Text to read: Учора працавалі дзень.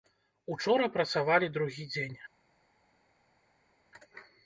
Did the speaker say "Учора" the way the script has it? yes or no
yes